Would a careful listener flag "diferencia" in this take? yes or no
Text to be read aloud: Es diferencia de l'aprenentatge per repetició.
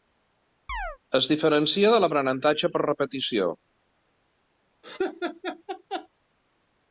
no